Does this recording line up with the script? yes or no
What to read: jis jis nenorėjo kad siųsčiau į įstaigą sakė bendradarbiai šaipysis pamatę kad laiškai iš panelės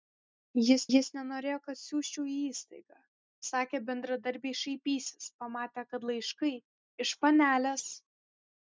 yes